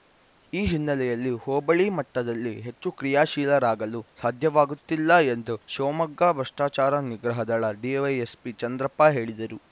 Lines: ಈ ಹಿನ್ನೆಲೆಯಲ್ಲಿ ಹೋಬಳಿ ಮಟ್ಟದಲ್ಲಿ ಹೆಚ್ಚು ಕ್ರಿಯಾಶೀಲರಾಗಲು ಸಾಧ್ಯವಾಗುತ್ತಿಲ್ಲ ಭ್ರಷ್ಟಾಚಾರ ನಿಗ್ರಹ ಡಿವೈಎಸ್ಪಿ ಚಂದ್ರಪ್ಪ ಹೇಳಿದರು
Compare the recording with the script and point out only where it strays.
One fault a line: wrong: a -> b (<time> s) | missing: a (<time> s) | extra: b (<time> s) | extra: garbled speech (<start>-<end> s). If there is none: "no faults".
extra: ಎಂದು ಶಿವಮೊಗ್ಗ (5.3 s)
extra: ದಳ (7.4 s)